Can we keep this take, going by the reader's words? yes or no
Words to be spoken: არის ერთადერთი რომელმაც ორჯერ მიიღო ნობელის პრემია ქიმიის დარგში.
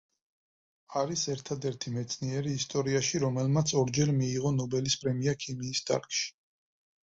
no